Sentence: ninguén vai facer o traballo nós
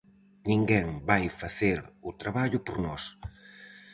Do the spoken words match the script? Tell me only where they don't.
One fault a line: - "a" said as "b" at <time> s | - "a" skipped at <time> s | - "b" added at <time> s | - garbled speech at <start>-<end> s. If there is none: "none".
- "por" added at 2.7 s